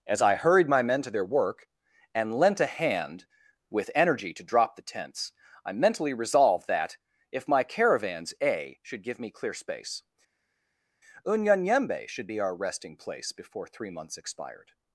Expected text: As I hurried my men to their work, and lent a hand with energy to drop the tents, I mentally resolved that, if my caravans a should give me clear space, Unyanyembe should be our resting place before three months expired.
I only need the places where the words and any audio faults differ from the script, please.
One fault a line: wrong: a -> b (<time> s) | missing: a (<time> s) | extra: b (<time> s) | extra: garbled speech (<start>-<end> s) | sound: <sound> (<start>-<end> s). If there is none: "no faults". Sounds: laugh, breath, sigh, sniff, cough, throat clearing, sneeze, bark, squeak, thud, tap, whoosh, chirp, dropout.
no faults